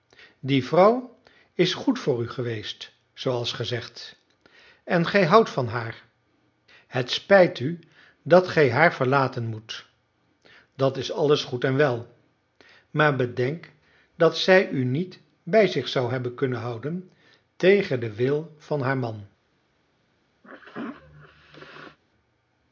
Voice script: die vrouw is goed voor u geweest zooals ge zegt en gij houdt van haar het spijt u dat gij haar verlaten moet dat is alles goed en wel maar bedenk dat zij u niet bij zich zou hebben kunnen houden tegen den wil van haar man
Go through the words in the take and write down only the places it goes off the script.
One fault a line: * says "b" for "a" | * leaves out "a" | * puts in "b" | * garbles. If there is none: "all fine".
all fine